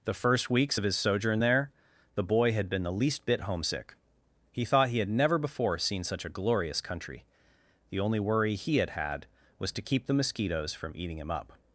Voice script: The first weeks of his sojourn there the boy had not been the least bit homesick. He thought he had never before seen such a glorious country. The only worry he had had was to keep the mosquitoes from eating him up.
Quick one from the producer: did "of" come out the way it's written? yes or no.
yes